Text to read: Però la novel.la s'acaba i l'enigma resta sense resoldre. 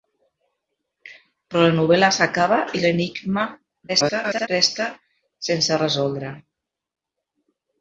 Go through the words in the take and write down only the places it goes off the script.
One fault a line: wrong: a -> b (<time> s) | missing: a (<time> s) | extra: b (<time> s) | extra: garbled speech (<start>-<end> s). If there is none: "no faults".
extra: garbled speech (3.9-4.5 s)